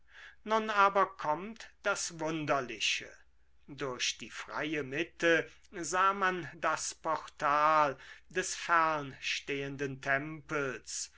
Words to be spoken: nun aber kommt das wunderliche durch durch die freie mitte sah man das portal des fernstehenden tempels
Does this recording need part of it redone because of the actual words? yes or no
yes